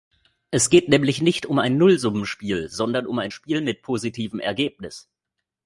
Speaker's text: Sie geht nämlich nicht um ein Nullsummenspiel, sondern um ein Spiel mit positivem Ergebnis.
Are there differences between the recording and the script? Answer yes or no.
yes